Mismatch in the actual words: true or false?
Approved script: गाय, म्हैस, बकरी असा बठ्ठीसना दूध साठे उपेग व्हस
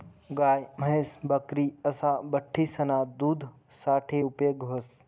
false